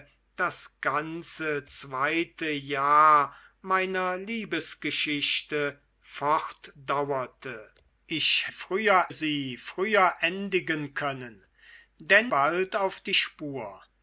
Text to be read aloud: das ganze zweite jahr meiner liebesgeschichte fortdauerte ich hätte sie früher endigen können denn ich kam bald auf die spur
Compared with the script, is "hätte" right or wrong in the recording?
wrong